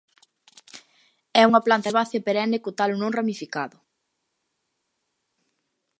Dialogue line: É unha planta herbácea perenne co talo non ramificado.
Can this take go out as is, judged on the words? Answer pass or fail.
pass